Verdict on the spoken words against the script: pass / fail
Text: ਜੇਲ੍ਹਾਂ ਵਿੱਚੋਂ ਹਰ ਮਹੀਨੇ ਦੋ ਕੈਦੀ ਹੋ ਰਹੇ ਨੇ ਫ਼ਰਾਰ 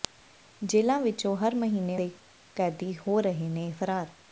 pass